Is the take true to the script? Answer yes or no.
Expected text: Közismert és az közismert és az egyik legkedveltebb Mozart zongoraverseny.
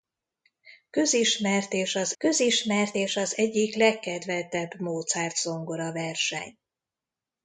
yes